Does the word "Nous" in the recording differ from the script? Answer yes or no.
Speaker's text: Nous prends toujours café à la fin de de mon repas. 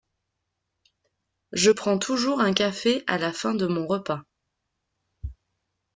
yes